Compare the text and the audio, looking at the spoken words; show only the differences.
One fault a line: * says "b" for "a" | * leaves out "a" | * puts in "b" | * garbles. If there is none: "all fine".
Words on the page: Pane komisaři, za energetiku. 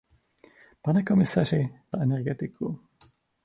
all fine